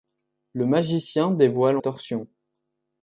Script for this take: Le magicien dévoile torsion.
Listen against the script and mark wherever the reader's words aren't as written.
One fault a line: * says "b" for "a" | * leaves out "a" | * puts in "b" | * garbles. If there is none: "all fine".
all fine